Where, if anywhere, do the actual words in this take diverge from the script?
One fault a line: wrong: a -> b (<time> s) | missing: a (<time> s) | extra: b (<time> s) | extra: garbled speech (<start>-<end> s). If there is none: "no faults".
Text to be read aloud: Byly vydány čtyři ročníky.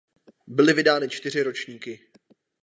no faults